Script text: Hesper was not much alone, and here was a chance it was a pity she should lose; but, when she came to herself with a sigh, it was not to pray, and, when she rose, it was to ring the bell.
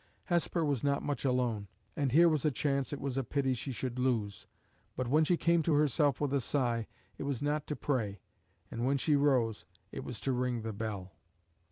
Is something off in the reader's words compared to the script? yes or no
no